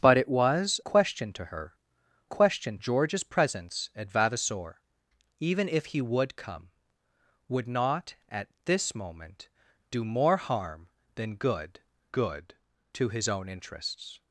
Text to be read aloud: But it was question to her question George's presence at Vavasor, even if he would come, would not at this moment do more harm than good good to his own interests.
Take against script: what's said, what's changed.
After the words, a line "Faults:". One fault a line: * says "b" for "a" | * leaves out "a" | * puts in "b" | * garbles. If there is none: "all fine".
But it was question to her question George's presence at Vavasor, even if he would come, would not at this moment do more harm than good good to his own interests.
Faults:
all fine